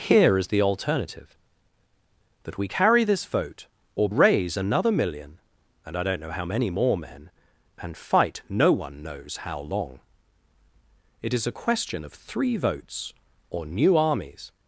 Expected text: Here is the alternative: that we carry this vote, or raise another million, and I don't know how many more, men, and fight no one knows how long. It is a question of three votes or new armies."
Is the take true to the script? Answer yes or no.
yes